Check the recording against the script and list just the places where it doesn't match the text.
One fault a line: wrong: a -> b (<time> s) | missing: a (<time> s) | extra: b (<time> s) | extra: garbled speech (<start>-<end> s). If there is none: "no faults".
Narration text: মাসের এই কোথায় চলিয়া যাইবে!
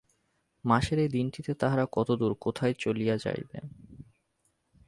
extra: দিনটিতে তাহারা কতদূর (1.1 s)